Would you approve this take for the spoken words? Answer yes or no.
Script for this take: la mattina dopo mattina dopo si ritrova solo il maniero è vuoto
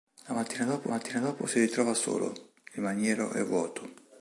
yes